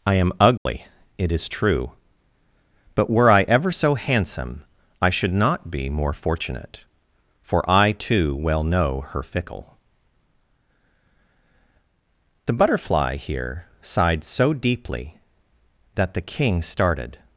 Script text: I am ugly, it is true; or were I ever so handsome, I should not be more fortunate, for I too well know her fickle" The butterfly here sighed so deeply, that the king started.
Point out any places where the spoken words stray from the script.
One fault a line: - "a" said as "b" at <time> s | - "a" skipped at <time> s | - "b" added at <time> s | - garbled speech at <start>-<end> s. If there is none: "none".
- "or" said as "but" at 3.0 s